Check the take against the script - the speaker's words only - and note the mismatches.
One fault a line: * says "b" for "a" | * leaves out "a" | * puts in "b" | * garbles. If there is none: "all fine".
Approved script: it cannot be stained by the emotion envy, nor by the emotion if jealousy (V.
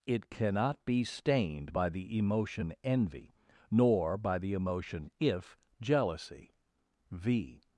all fine